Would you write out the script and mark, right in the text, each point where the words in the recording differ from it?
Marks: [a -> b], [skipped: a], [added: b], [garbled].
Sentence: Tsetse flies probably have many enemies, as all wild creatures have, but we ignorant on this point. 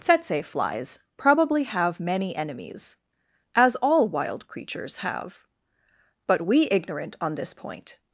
Tsetse flies probably have many enemies, as all wild creatures have, but we ignorant on this point.